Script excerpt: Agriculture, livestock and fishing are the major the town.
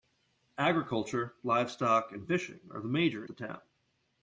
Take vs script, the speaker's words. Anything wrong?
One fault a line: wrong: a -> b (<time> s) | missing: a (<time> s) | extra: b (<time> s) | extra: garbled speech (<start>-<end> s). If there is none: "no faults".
no faults